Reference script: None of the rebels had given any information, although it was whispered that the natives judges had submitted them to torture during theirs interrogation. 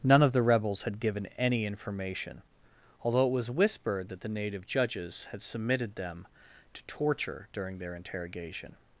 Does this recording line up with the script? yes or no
no